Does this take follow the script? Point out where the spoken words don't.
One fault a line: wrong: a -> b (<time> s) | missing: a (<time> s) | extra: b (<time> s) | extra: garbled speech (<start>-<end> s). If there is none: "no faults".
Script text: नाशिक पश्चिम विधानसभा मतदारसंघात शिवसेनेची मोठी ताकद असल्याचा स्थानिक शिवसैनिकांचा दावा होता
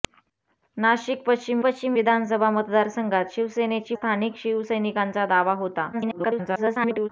extra: पश्चिम (1.6 s)
missing: मोठी ताकद असल्याचा (3.9 s)
extra: garbled speech (5.9-7.1 s)